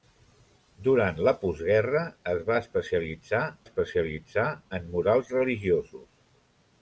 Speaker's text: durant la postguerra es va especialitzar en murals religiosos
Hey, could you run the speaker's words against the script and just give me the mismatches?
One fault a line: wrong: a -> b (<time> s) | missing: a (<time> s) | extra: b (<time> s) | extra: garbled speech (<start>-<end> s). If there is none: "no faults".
extra: especialitzar (3.7 s)